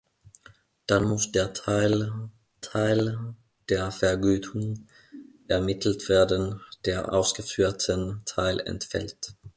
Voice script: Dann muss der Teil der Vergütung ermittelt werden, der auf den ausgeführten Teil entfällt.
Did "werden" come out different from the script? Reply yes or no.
no